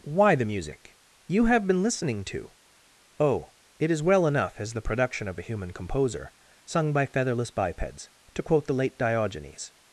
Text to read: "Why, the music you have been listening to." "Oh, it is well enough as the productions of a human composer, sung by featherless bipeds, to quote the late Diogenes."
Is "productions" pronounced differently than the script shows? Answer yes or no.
yes